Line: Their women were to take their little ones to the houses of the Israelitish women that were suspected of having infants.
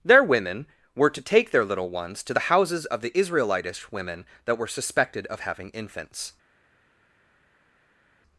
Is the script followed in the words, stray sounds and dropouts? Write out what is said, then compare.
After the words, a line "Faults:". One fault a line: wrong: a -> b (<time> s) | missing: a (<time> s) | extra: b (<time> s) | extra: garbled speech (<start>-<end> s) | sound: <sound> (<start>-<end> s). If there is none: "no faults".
Their women were to take their little ones to the houses of the Israelitish women that were suspected of having infants.
Faults:
no faults